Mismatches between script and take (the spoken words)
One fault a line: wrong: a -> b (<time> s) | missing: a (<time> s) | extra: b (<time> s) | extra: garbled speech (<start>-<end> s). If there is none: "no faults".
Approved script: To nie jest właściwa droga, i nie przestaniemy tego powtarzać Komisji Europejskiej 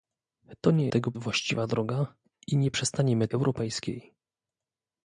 wrong: jest -> tego (0.9 s)
missing: tego powtarzać Komisji (3.3 s)